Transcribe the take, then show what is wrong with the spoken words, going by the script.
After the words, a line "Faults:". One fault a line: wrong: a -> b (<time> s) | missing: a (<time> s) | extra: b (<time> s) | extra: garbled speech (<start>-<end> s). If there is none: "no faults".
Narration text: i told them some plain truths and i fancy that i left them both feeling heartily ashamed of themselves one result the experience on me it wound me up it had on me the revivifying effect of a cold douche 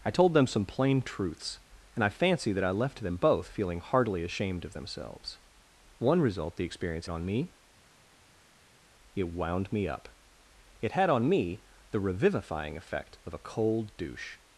i told them some plain truths and i fancy that i left them both feeling heartily ashamed of themselves one result the experience on me it wound me up it had on me the revivifying effect of a cold douche
Faults:
no faults